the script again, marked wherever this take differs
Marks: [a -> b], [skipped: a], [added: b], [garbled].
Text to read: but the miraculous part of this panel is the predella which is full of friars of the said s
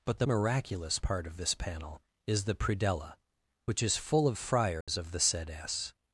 but the miraculous part of this panel is the predella which is full of friars of the said s